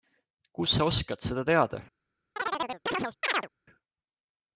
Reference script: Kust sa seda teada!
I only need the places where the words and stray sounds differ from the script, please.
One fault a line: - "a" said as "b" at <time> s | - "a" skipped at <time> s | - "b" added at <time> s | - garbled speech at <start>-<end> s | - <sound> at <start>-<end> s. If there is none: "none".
- "oskad" added at 0.9 s
- chirp at 2.4-3.5 s